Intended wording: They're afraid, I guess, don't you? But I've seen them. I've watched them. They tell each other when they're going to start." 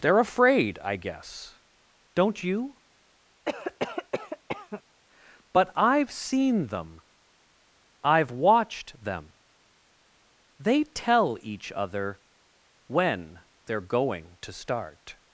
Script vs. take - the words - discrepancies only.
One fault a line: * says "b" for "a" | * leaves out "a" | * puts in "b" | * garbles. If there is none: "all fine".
all fine